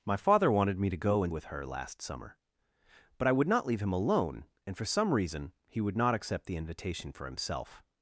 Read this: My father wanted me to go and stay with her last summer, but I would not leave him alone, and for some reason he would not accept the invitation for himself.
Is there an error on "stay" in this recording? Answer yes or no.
yes